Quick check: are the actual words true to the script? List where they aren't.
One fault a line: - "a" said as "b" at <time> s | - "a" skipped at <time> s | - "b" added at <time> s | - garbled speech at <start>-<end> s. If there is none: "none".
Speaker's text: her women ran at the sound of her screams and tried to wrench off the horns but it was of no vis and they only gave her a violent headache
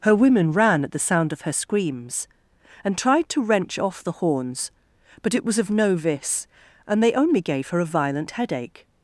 none